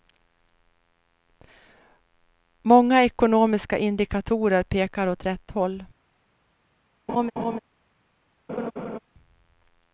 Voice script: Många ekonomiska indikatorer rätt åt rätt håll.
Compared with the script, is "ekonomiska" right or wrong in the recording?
right